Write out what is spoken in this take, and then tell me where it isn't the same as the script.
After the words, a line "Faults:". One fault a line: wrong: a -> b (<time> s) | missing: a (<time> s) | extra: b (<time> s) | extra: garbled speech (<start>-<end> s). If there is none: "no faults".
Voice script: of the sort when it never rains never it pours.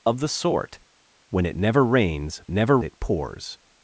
of the sort when it never rains never it pours.
Faults:
no faults